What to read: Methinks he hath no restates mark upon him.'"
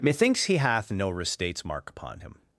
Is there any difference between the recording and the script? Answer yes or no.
no